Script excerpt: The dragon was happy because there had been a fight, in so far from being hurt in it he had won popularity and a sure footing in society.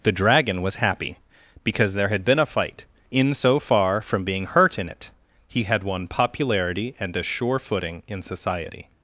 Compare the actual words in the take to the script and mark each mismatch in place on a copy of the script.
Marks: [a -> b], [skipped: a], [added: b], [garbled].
The dragon was happy because there had been a fight, in so far from being hurt in it he had won popularity and a sure footing in society.